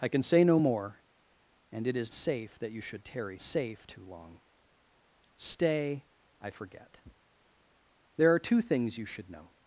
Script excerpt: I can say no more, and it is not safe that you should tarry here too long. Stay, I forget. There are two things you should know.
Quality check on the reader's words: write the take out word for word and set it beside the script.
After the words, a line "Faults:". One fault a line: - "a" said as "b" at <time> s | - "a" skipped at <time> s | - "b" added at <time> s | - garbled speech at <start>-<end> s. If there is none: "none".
I can say no more, and it is safe that you should tarry safe too long. Stay, I forget. There are two things you should know.
Faults:
- "not" skipped at 2.1 s
- "here" said as "safe" at 3.4 s